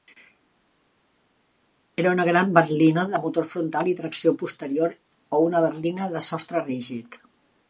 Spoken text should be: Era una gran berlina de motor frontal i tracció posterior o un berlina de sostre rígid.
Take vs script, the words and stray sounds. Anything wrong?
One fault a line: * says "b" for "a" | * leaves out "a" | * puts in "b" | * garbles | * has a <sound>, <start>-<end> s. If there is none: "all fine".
* says "una" for "un"